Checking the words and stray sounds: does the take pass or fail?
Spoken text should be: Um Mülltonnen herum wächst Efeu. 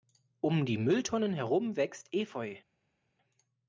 fail